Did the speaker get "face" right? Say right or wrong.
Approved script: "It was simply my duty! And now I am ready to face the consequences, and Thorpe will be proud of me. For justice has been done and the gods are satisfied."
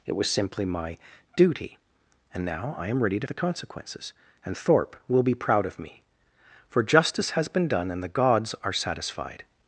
wrong